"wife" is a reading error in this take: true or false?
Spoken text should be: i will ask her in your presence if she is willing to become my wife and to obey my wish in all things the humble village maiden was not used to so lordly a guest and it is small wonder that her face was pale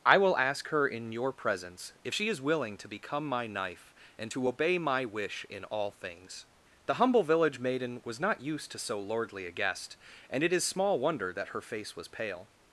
true